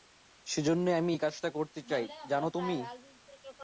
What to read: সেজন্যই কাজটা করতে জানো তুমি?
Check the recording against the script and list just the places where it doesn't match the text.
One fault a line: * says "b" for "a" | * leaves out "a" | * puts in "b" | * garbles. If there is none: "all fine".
* puts in "আমি এই"
* puts in "চাই"